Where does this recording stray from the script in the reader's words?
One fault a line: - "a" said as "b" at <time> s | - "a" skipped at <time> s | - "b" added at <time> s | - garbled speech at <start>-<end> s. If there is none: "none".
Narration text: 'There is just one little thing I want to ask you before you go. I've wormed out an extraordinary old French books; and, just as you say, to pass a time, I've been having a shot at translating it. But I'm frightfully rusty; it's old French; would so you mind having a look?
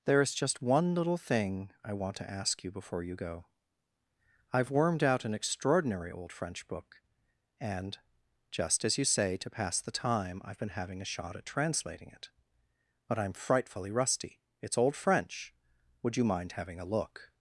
- "books" said as "book" at 6.7 s
- "a" said as "the" at 9.8 s
- "so" skipped at 16.1 s